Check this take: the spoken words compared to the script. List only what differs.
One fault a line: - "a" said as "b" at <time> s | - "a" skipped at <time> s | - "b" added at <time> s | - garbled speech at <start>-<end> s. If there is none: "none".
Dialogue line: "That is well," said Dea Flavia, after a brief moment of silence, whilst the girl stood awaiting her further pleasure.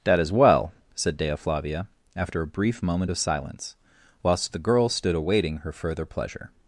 none